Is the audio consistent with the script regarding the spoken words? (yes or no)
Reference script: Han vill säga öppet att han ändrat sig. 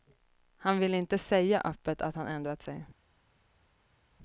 no